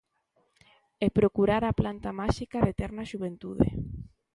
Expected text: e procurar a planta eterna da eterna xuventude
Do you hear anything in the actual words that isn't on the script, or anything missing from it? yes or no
yes